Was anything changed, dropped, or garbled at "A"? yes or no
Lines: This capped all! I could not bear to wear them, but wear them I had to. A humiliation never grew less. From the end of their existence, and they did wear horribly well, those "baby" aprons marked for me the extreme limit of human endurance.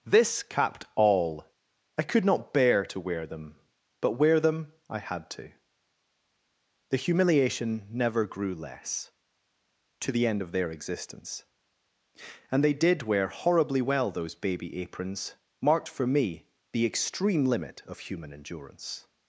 yes